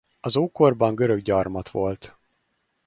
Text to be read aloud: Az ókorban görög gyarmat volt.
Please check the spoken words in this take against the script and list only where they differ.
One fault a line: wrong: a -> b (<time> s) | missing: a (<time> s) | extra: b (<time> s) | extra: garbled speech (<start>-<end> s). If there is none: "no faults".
no faults